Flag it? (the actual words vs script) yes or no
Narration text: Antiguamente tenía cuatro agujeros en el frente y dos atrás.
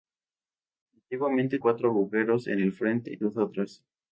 yes